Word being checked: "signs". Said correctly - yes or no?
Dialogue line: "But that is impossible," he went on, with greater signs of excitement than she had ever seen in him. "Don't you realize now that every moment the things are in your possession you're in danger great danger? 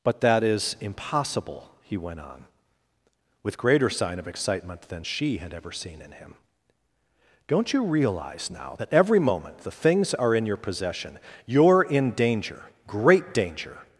no